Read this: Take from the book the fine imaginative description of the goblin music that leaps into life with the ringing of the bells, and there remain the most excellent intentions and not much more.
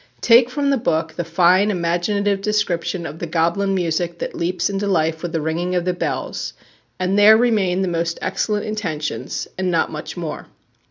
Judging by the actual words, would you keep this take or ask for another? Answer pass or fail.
pass